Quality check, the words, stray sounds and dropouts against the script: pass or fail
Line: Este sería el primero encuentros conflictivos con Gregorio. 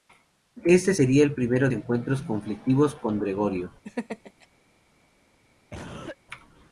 fail